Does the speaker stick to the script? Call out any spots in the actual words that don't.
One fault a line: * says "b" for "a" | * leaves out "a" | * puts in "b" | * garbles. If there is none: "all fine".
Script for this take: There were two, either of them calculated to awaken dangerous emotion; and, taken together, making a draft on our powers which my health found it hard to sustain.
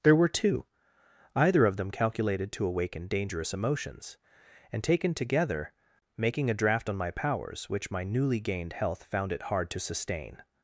* says "emotions" for "emotion"
* says "my" for "our"
* puts in "newly gained"